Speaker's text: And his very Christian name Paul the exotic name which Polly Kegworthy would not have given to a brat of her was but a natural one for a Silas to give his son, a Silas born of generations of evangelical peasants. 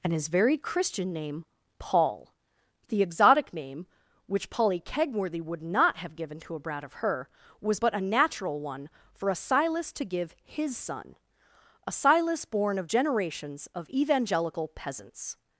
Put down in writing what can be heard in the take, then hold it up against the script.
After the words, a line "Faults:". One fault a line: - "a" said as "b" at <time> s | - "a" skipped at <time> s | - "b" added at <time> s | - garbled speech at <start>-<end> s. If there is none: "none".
And his very Christian name Paul the exotic name which Polly Kegworthy would not have given to a brat of her was but a natural one for a Silas to give his son, a Silas born of generations of evangelical peasants.
Faults:
none